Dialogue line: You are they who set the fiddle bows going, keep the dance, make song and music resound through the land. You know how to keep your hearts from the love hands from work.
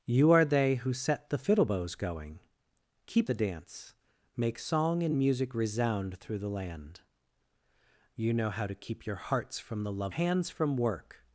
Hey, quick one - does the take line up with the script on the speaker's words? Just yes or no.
yes